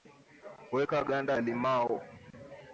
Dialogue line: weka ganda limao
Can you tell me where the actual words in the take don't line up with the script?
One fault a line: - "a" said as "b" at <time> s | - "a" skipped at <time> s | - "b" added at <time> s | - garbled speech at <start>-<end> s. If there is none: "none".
none